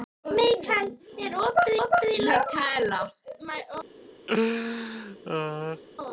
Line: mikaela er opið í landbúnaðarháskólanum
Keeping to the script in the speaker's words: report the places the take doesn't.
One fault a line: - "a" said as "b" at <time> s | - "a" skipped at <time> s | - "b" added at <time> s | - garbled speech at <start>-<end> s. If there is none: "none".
- "opið" added at 1.8 s